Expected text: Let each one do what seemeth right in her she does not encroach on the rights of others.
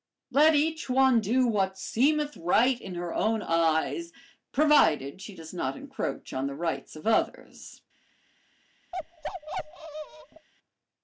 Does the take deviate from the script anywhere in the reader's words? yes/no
yes